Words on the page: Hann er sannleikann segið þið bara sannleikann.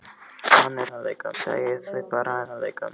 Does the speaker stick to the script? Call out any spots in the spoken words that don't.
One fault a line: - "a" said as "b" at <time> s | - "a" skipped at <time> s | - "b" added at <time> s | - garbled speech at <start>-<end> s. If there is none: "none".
none